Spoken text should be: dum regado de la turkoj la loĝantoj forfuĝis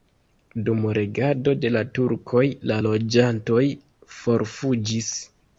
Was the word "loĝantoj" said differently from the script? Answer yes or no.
no